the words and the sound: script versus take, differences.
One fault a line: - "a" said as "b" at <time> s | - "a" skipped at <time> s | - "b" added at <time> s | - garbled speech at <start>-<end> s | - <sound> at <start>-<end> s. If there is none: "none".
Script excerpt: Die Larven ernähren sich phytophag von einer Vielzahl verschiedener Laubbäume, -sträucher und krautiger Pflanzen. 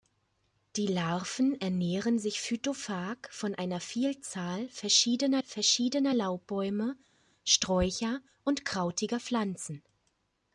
- "verschiedener" added at 5.4 s